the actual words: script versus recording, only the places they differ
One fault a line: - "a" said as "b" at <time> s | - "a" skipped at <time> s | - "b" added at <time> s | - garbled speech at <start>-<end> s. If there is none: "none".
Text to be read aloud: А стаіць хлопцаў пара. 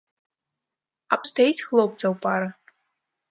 none